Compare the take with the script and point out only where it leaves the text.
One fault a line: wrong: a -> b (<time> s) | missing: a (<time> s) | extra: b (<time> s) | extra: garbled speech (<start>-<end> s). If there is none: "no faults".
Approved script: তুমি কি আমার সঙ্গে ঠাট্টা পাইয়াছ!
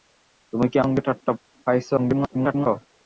missing: আমার (0.8 s)
extra: garbled speech (2.0-2.7 s)